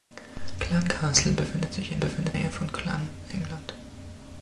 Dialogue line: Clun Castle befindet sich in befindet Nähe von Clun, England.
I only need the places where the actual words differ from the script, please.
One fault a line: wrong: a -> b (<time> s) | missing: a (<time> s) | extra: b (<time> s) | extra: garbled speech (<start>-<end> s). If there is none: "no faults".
no faults